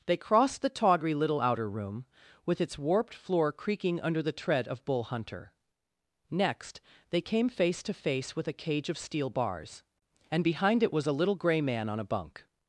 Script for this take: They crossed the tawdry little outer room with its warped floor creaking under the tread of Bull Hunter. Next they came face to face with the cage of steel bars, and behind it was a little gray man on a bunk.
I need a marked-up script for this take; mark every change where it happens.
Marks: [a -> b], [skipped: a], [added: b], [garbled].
They crossed the tawdry little outer room with its warped floor creaking under the tread of Bull Hunter. Next they came face to face with [the -> a] cage of steel bars, and behind it was a little gray man on a bunk.